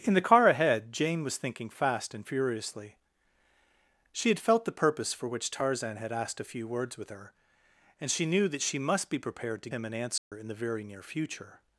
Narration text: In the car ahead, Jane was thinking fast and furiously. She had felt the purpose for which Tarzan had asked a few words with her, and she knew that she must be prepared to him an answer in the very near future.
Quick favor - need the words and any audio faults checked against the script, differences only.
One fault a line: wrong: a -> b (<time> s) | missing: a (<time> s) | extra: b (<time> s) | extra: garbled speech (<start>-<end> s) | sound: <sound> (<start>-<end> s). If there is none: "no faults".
sound: dropout (10.2-10.3 s)